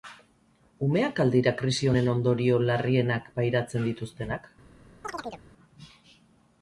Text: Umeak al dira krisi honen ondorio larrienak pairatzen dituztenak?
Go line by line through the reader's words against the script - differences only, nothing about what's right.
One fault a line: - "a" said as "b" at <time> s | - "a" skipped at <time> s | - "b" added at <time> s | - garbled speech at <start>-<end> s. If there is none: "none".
none